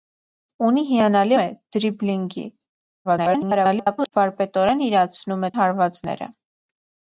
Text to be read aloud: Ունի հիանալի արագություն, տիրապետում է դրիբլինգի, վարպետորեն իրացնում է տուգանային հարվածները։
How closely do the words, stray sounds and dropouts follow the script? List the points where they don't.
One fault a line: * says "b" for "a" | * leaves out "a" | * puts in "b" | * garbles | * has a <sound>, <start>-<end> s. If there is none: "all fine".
* leaves out "արագություն տիրապետում"
* garbles
* leaves out "տուգանային"